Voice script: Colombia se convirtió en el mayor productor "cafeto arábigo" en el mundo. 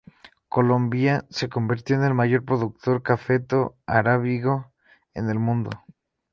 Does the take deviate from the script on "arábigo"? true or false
false